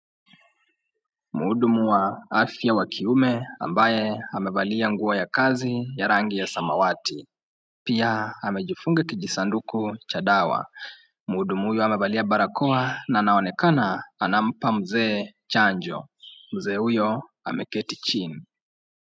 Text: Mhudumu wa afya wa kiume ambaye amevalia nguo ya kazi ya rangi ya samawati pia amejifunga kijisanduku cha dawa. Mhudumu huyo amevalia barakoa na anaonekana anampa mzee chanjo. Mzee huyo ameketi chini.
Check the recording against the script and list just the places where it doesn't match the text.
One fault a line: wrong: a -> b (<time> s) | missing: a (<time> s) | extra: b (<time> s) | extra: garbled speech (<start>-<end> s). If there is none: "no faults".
no faults